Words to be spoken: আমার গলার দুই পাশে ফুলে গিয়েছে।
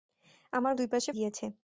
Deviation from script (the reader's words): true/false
true